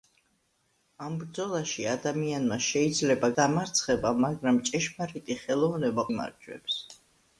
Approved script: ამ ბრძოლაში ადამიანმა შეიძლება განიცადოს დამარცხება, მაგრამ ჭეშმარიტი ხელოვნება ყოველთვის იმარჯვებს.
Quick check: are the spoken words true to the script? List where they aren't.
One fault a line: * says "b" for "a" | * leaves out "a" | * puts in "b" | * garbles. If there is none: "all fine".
* leaves out "განიცადოს"
* leaves out "ყოველთვის"